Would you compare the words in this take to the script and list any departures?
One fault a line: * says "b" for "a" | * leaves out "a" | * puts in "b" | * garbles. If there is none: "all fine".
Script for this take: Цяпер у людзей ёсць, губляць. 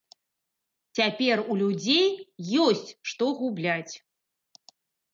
* puts in "што"